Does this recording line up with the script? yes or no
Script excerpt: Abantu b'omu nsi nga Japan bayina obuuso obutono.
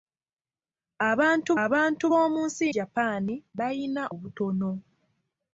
no